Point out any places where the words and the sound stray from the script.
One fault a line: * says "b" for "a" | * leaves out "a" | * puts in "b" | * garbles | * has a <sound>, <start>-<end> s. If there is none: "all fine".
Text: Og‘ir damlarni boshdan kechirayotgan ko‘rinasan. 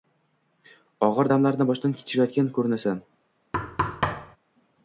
* has a thud, 3.5-4.4 s